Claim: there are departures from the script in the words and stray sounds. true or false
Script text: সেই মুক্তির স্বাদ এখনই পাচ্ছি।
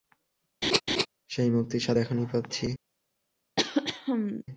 true